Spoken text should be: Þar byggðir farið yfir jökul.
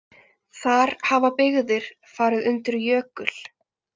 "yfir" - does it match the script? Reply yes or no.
no